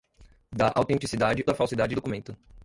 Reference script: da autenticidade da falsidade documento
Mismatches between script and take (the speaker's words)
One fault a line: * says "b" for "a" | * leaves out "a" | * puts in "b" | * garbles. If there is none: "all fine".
all fine